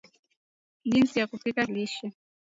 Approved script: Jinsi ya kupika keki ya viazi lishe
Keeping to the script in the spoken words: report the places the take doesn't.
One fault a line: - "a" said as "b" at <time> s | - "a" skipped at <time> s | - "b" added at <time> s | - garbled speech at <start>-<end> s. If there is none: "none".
- "keki ya viazi" skipped at 1.7 s